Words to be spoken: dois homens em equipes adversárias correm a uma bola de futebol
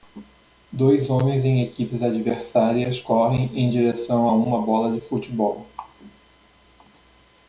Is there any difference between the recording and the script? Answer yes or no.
yes